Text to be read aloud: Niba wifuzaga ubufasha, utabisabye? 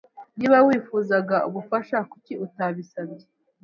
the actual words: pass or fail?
fail